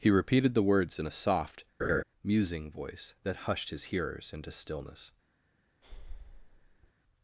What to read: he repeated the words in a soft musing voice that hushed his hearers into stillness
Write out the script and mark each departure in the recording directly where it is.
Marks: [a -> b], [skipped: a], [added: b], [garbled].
he repeated the words in a soft musing voice that hushed his hearers into stillness